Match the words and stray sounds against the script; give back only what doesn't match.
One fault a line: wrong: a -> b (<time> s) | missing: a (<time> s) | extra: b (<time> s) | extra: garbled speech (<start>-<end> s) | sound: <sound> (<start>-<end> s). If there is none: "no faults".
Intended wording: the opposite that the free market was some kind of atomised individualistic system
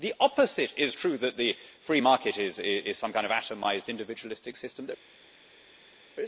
extra: is true (0.8 s)
wrong: was -> is (2.4 s)